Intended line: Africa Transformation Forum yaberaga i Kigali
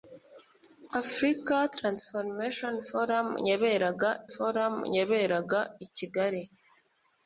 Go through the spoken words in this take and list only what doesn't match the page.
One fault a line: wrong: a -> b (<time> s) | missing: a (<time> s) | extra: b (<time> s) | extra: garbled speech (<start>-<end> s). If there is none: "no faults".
extra: Forum yaberaga (4.3 s)